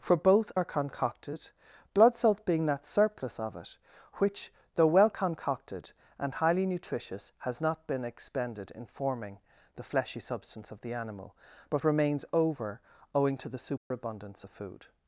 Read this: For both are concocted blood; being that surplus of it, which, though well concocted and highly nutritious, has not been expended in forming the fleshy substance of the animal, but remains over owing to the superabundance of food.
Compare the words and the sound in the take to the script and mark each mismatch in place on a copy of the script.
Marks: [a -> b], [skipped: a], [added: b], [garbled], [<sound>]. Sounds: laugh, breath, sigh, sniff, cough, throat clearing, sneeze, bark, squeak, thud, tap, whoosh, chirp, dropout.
For both are concocted blood; [added: salt] being that surplus of it, which, though well concocted and highly nutritious, has not been expended in forming the fleshy substance of the animal, but remains over owing to the superabundance [dropout] of food.